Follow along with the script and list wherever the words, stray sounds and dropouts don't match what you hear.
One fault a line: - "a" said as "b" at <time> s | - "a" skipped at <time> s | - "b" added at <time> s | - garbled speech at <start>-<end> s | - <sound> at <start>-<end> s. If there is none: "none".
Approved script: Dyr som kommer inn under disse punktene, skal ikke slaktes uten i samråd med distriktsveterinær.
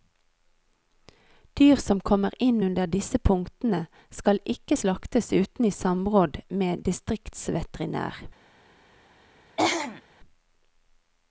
- throat clearing at 9.6-10.0 s